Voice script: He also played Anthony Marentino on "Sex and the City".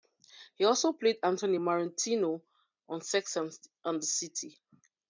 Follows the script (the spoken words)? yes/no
yes